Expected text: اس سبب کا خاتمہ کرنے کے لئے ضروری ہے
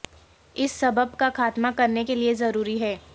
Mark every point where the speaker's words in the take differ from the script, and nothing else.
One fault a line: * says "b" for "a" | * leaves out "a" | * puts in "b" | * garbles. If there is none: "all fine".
all fine